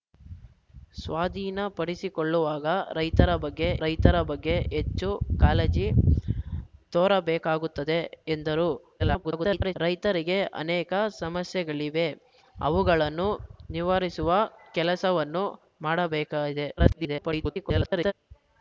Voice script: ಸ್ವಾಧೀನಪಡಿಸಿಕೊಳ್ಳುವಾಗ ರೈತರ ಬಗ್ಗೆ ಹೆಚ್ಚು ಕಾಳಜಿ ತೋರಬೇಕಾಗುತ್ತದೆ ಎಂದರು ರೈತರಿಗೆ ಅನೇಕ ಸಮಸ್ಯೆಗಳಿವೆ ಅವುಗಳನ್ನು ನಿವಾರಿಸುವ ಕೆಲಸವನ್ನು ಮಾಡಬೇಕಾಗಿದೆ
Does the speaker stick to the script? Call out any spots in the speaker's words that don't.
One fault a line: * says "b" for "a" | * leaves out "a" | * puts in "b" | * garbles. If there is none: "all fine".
* puts in "ರೈತರ ಬಗ್ಗೆ"
* garbles
* garbles